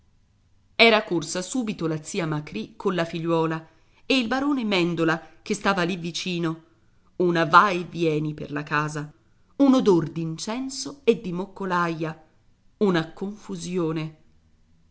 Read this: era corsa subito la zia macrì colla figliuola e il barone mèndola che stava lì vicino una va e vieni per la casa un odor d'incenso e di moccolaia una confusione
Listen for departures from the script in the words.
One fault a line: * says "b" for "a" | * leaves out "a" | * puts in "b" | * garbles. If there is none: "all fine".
all fine